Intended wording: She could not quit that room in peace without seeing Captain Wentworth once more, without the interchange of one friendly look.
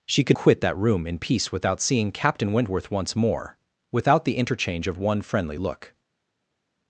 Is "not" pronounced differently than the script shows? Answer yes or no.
yes